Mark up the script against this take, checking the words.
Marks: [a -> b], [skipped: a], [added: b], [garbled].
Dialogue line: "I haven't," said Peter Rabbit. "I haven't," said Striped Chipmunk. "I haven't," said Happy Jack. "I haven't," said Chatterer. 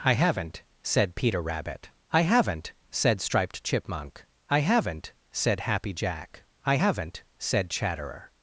"I haven't," said Peter Rabbit. "I haven't," said Striped Chipmunk. "I haven't," said Happy Jack. "I haven't," said Chatterer.